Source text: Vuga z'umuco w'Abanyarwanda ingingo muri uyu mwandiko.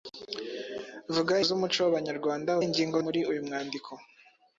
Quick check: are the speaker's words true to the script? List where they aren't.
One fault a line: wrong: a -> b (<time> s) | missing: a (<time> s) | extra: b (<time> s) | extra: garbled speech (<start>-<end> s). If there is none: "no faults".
no faults